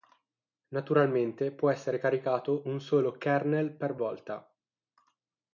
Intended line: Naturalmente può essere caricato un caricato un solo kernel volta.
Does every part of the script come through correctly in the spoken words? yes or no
no